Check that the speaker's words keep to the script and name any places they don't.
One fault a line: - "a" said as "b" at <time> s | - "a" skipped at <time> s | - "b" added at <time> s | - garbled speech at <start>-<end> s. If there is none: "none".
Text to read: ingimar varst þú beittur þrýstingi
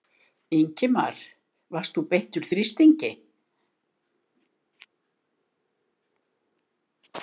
none